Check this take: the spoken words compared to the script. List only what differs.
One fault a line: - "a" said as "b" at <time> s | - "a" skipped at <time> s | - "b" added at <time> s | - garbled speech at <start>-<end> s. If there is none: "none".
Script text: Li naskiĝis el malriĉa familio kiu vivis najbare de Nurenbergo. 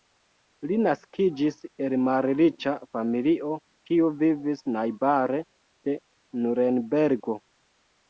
none